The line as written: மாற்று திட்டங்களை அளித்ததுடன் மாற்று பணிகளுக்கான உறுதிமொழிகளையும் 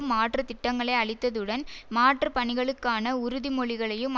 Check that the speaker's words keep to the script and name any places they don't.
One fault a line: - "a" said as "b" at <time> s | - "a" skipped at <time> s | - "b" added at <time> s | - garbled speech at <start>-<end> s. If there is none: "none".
none